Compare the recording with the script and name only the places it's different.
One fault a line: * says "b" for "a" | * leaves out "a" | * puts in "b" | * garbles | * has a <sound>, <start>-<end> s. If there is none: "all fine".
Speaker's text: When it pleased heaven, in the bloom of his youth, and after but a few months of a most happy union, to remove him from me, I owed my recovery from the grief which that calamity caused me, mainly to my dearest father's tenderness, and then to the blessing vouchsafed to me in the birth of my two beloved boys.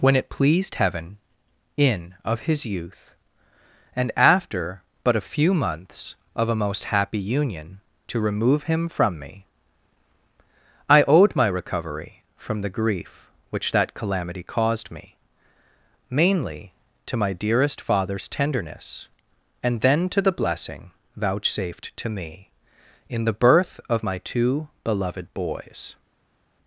* leaves out "the bloom"